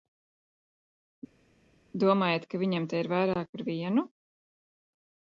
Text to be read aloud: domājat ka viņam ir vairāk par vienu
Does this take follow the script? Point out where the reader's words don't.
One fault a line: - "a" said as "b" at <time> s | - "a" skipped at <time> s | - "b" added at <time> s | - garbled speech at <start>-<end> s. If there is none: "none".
- "te" added at 2.9 s